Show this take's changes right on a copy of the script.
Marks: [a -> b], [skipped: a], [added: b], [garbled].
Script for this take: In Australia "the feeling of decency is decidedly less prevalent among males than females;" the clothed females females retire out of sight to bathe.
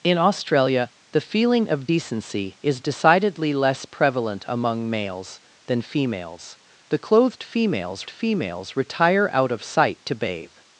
In Australia "the feeling of decency is decidedly less prevalent among males than females;" the clothed females females retire out of sight to bathe.